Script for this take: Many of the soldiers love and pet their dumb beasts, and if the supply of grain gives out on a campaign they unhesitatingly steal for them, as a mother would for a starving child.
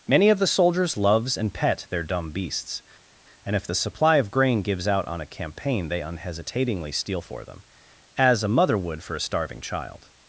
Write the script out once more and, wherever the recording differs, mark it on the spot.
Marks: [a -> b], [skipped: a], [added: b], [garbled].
Many of the soldiers [love -> loves] and pet their dumb beasts, and if the supply of grain gives out on a campaign they unhesitatingly steal for them, as a mother would for a starving child.